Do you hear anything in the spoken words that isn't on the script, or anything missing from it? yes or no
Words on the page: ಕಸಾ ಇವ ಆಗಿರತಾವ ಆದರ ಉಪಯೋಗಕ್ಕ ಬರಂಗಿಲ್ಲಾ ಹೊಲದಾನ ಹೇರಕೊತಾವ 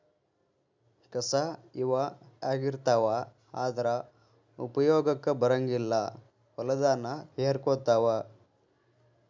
no